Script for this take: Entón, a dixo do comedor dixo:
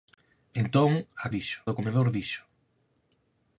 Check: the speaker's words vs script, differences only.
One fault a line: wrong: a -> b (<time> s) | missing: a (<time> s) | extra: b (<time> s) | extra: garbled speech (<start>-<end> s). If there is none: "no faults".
no faults